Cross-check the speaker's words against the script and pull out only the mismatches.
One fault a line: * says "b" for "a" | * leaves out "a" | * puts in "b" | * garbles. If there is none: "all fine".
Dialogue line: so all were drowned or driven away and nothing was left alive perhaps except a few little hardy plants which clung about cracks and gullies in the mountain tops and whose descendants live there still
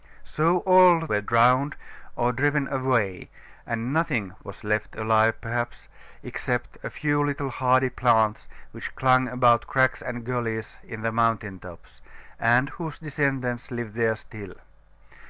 all fine